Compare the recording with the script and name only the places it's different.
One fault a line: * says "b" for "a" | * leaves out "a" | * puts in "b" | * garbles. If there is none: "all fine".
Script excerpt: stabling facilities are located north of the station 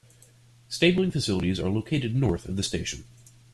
all fine